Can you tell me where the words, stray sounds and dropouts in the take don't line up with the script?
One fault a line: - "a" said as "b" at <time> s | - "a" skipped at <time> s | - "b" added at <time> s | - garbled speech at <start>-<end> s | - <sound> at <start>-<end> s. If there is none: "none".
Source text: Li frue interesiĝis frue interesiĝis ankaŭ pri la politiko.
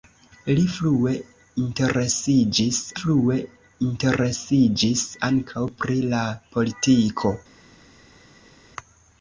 none